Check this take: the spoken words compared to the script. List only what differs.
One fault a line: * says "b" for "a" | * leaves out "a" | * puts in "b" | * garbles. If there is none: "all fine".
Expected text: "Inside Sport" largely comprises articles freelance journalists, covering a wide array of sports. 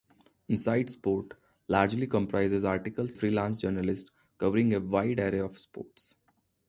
all fine